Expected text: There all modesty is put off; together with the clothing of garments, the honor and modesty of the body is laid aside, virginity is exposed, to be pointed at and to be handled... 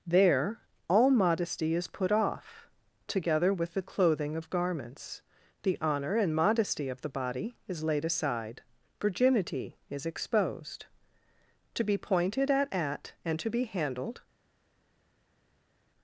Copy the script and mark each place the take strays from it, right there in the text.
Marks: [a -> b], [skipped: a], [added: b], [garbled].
There all modesty is put off; together with the clothing of garments, the honor and modesty of the body is laid aside, virginity is exposed, to be pointed at [added: at] and to be handled...